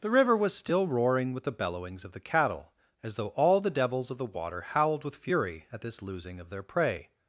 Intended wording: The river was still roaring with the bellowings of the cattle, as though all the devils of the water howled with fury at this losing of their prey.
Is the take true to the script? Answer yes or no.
yes